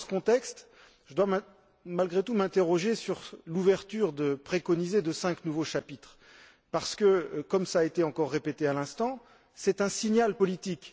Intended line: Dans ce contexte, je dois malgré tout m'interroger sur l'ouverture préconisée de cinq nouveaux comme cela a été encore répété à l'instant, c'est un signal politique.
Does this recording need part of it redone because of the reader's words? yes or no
yes